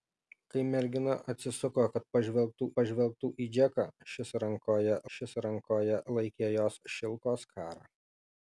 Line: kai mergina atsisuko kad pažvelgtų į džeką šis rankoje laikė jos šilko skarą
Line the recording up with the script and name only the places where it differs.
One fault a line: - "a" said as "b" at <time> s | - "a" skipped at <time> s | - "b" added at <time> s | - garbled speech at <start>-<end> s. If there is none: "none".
- "pažvelgtų" added at 2.8 s
- "šis rankoje" added at 5.1 s